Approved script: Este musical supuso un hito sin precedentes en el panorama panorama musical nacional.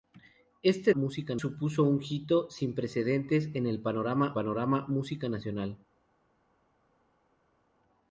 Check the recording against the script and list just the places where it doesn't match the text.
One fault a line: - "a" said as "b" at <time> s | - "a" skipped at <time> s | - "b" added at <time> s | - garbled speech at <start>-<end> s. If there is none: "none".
none